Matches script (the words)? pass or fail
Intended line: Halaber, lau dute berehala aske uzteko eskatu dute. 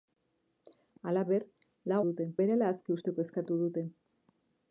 pass